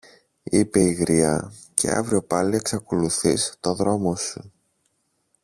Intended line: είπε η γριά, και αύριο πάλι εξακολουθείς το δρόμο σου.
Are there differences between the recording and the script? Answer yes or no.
no